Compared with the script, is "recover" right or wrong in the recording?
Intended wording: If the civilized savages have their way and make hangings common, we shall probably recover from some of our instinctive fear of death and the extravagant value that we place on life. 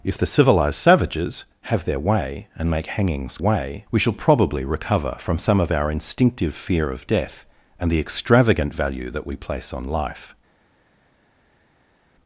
right